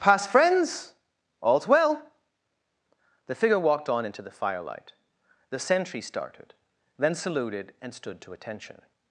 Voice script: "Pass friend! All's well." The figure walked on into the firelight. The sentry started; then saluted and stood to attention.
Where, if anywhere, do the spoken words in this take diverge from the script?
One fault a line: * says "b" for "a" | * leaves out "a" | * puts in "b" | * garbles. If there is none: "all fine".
* says "friends" for "friend"